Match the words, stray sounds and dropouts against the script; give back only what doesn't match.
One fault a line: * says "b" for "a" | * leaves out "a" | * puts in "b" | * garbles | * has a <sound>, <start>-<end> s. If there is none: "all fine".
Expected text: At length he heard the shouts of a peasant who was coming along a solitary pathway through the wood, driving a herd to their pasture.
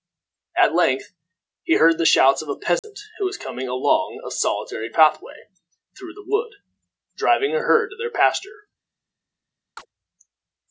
* has a dropout, 2.8-2.8 s
* has a chirp, 9.8-9.9 s